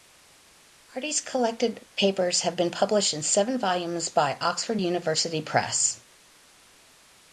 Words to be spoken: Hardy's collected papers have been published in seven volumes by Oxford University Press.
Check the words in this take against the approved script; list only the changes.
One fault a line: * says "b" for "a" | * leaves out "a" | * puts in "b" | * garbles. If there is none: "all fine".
all fine